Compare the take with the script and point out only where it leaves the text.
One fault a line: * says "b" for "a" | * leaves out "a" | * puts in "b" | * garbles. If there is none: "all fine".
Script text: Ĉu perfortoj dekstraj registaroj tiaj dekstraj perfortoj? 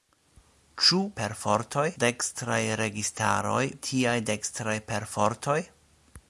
all fine